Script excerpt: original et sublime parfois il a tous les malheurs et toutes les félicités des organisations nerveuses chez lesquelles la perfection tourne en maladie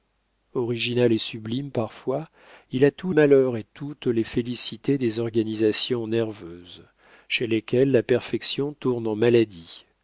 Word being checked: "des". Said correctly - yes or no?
yes